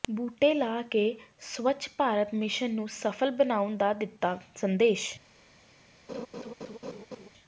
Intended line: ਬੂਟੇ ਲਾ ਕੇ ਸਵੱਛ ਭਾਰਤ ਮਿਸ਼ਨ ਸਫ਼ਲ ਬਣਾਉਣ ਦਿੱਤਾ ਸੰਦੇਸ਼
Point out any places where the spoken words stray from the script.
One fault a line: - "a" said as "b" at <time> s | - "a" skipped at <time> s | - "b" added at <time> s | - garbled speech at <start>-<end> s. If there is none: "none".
- "ਨੂੰ" added at 2.7 s
- "ਦਾ" added at 3.8 s